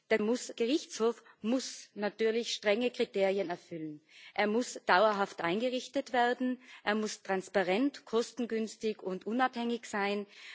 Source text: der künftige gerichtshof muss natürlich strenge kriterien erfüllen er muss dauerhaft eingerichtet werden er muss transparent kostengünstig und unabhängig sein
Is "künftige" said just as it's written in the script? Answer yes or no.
no